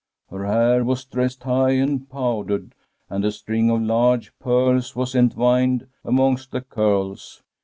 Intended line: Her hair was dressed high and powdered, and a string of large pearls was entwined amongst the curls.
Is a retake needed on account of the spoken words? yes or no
no